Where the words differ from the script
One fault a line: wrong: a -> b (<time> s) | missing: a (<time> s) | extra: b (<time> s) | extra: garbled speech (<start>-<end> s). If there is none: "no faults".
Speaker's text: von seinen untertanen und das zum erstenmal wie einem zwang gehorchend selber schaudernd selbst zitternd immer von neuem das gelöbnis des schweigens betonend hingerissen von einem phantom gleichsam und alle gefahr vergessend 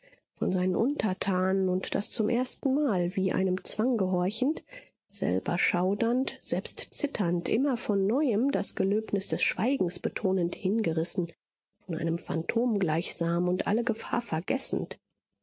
no faults